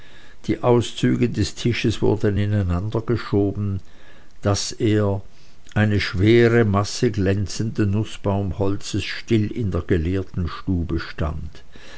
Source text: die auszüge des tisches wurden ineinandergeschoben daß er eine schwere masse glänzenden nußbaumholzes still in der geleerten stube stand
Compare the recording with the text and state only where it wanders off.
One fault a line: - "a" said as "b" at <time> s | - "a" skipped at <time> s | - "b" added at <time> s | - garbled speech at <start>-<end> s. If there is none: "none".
none